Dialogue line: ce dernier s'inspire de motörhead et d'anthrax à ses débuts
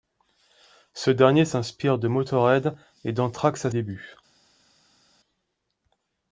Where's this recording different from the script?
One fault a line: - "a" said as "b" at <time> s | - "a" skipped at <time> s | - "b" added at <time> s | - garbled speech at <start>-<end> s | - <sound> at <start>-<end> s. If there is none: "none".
- "ses" skipped at 3.7 s